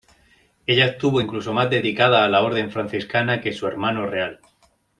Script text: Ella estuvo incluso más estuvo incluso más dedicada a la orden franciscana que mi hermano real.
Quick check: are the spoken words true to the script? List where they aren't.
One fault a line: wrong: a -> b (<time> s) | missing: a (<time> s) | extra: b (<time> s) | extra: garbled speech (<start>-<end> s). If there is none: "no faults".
missing: estuvo incluso más (1.7 s)
wrong: mi -> su (3.5 s)